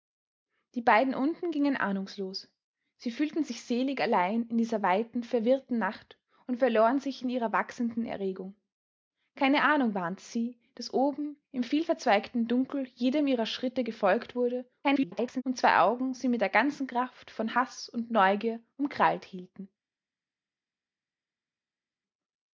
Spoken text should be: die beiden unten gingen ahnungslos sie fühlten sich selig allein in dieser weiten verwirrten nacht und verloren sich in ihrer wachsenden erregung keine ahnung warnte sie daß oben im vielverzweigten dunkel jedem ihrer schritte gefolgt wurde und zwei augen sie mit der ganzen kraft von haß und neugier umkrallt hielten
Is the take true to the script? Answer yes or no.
no